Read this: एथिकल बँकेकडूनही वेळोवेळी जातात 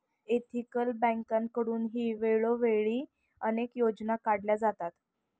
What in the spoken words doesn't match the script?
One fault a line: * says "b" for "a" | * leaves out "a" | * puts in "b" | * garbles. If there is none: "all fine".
* puts in "अनेक योजना काढल्या"